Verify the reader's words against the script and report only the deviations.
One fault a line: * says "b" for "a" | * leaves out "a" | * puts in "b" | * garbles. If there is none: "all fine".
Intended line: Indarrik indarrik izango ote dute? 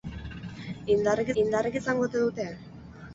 all fine